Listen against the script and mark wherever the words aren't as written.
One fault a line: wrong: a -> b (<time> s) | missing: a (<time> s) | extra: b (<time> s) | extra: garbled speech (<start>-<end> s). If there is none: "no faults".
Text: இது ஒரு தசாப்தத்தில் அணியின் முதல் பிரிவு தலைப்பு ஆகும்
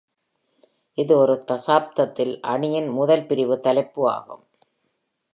no faults